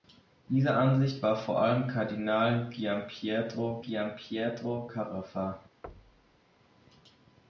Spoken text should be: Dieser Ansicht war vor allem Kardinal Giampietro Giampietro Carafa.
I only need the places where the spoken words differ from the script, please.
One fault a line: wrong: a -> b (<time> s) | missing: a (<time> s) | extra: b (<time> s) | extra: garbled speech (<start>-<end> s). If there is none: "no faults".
no faults